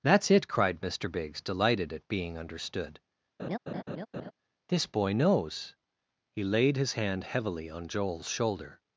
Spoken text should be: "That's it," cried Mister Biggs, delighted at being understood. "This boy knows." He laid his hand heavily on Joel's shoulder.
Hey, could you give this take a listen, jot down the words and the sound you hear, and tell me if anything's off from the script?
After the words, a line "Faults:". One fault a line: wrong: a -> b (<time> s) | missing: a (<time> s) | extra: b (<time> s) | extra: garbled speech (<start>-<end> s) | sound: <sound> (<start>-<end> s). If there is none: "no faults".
"That's it," cried Mister Biggs, delighted at being understood. "This boy knows." He laid his hand heavily on Joel's shoulder.
Faults:
sound: laugh (3.4-4.3 s)